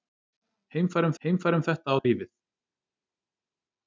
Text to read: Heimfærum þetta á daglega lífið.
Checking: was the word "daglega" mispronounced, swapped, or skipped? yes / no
yes